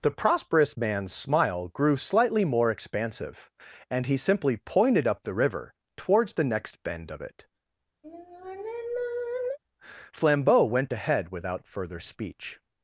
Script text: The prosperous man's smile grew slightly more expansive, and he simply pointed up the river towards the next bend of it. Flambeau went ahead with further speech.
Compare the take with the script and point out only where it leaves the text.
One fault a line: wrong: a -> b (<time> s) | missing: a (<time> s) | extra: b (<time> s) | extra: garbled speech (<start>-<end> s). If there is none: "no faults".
wrong: with -> without (11.3 s)